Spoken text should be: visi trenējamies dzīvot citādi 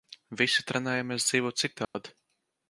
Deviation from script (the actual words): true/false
false